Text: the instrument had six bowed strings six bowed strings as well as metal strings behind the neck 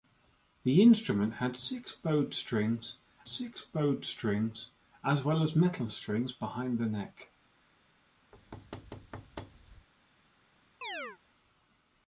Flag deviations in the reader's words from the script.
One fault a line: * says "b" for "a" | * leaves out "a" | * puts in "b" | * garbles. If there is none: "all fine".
all fine